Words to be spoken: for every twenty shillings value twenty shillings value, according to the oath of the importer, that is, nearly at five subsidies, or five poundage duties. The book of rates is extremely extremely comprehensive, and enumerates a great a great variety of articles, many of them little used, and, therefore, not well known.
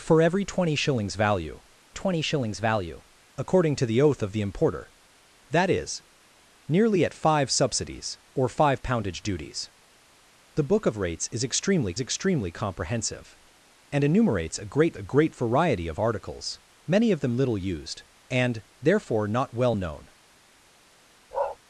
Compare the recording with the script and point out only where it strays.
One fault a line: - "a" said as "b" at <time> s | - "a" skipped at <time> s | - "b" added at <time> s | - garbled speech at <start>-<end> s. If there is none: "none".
none